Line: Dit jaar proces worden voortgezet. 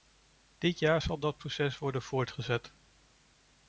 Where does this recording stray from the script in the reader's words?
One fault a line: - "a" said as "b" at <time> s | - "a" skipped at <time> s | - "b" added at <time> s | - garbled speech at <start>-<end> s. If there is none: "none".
- "zal dat" added at 1.0 s